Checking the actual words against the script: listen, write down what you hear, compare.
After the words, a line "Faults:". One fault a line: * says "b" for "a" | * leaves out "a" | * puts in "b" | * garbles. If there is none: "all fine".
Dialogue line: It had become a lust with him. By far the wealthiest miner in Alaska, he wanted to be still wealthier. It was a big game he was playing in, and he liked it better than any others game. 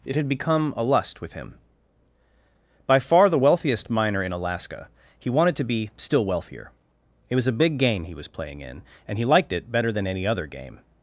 It had become a lust with him. By far the wealthiest miner in Alaska, he wanted to be still wealthier. It was a big game he was playing in, and he liked it better than any other game.
Faults:
* says "other" for "others"